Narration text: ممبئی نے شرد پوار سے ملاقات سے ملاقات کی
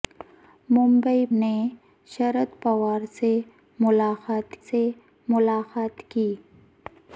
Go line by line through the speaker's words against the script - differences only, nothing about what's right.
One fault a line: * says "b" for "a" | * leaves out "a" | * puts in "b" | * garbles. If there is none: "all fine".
all fine